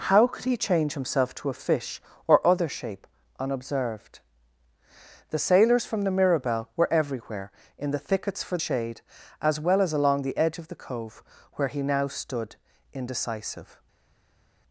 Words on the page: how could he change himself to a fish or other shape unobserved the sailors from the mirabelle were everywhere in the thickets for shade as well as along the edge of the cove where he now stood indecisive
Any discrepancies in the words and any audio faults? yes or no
no